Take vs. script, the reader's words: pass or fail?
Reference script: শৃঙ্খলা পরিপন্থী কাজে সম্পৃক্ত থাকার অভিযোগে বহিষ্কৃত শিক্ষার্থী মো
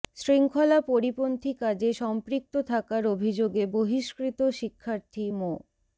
pass